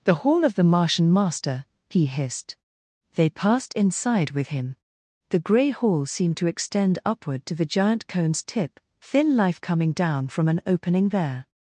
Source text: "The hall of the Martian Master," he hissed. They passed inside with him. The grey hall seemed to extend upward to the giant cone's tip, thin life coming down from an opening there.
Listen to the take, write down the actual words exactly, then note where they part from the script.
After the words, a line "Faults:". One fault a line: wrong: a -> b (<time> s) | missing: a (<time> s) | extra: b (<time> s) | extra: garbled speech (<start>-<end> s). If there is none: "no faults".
"The hall of the Martian Master," he hissed. They passed inside with him. The grey hall seemed to extend upward to the giant cone's tip, thin life coming down from an opening there.
Faults:
no faults